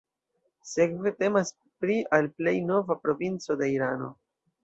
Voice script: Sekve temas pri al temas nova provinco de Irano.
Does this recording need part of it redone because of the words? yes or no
yes